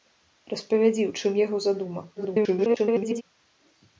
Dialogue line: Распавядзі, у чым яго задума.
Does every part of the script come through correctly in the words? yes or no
no